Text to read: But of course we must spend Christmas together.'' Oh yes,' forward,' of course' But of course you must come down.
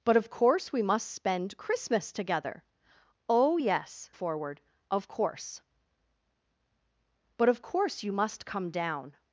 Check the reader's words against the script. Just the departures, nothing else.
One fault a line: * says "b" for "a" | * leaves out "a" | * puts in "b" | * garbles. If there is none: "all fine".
all fine